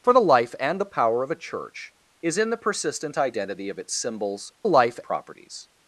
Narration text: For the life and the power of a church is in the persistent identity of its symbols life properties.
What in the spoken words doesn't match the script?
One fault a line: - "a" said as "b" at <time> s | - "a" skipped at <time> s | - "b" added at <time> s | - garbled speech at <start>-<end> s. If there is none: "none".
none